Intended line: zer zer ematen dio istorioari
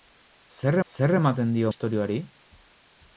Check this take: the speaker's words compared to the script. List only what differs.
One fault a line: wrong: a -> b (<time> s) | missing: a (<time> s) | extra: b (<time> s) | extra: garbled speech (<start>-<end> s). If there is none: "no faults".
no faults